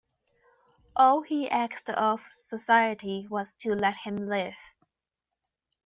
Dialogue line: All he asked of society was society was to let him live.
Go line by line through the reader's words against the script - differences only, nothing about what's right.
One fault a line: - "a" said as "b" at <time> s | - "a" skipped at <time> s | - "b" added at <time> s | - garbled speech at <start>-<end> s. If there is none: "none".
- "society was" skipped at 3.5 s